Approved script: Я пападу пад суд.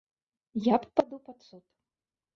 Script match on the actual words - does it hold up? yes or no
yes